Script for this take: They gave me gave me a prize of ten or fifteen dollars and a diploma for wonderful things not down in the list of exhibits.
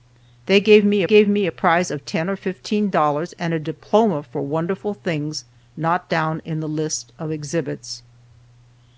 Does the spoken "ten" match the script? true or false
true